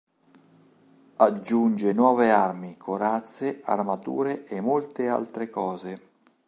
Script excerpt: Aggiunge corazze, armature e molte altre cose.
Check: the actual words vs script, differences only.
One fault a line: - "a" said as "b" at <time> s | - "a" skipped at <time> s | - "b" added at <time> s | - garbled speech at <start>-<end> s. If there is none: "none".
- "nuove armi" added at 1.9 s